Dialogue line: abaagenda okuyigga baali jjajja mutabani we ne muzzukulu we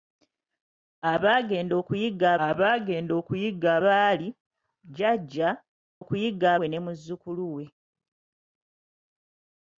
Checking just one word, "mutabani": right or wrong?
wrong